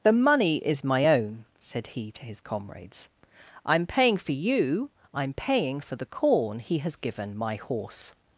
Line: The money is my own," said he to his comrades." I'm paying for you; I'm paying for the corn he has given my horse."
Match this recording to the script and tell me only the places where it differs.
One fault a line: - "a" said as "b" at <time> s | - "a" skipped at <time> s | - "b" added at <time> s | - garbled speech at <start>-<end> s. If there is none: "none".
none